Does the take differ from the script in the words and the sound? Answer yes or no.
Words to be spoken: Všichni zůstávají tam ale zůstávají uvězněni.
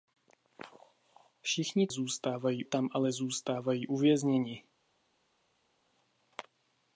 no